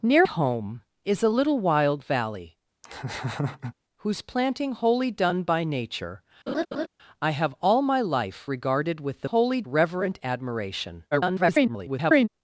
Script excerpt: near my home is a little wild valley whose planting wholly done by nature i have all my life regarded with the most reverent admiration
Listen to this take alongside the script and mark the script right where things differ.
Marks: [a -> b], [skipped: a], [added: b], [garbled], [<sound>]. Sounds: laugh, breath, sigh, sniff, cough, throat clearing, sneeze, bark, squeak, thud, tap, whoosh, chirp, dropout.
near [skipped: my] home is a little wild valley [laugh] whose planting wholly done by nature [laugh] i have all my life regarded with the [most -> wholly] reverent admiration [garbled]